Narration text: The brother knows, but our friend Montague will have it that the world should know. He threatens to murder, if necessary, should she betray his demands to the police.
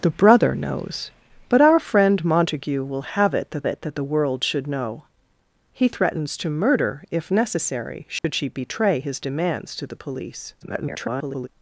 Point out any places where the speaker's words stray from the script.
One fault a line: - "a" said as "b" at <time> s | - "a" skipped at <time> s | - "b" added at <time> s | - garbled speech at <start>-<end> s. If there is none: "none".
- "it that" added at 3.7 s
- garbled speech at 10.6-11.5 s